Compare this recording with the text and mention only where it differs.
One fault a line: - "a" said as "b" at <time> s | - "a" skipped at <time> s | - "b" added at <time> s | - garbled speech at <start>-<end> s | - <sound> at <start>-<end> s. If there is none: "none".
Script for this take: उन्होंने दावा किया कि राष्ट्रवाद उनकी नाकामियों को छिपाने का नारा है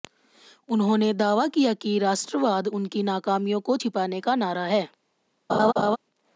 - laugh at 5.5-6.0 s